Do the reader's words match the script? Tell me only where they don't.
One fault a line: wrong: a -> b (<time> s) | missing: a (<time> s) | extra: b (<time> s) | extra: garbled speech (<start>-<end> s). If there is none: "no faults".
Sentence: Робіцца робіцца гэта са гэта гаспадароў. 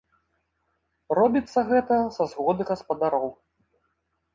missing: робіцца (1.6 s)
wrong: гэта -> згоды (2.3 s)